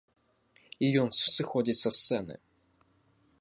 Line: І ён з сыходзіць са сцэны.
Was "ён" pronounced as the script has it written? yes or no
yes